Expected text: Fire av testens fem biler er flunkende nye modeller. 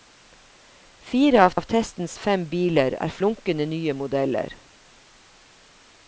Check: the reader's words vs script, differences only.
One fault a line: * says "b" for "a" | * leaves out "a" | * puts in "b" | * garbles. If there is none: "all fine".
* puts in "av"